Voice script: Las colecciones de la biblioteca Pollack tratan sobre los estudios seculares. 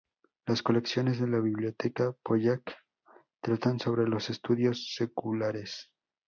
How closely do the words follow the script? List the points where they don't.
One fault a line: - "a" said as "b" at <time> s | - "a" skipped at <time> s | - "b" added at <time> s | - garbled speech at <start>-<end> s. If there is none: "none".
none